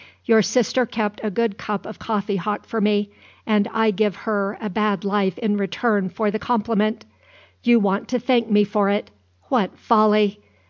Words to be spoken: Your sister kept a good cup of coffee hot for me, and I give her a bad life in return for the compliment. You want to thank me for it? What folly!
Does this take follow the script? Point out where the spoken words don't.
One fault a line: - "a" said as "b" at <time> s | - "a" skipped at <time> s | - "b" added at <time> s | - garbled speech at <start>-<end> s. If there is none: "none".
none